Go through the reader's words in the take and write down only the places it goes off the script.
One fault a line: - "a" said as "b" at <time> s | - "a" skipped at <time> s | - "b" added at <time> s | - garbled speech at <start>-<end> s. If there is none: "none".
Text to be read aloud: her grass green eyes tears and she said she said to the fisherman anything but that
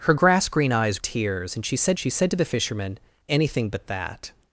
none